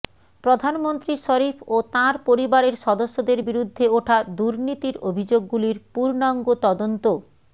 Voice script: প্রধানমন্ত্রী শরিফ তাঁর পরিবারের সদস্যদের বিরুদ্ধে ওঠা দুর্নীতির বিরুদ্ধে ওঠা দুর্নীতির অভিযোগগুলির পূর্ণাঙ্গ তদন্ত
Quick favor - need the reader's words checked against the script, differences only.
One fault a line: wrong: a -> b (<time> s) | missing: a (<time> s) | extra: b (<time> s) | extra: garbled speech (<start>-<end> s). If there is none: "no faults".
extra: ও (1.7 s)
missing: বিরুদ্ধে ওঠা দুর্নীতির (5.0 s)